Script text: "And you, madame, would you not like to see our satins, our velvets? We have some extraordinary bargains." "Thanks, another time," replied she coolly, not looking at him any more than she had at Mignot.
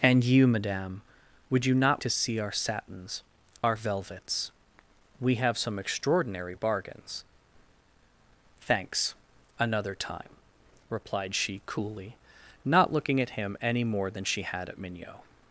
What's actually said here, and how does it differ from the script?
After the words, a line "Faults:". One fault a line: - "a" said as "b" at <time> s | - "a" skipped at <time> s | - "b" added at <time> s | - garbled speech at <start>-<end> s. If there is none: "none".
"And you, madame, would you not to see our satins, our velvets? We have some extraordinary bargains." "Thanks, another time," replied she coolly, not looking at him any more than she had at Mignot.
Faults:
- "like" skipped at 2.0 s